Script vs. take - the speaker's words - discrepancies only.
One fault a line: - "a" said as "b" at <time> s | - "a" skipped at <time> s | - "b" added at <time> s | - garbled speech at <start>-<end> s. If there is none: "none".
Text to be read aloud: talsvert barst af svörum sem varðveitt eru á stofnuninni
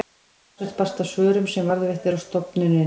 none